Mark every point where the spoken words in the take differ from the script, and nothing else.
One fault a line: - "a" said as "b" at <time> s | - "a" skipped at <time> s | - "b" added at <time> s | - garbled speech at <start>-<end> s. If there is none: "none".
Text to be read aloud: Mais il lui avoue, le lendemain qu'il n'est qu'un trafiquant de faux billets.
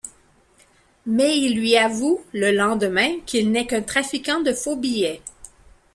none